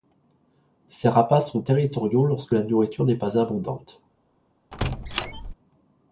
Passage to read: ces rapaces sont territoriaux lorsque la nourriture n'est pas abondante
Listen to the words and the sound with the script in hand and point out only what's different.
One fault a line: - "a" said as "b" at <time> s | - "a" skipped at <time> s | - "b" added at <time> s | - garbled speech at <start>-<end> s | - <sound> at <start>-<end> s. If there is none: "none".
- squeak at 4.7-5.5 s